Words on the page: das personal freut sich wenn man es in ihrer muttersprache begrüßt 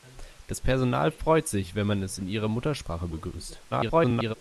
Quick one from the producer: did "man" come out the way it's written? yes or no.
yes